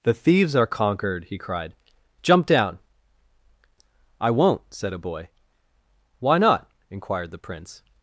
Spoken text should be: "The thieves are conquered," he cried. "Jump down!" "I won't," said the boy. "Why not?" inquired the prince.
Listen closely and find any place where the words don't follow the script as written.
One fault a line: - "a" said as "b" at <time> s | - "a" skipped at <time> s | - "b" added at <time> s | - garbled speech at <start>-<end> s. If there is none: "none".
- "the" said as "a" at 4.9 s